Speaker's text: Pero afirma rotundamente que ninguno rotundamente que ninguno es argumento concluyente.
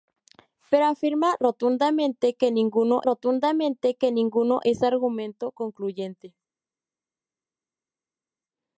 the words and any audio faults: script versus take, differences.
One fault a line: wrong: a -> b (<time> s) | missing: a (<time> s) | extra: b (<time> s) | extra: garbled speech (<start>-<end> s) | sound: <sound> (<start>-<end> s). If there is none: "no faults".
no faults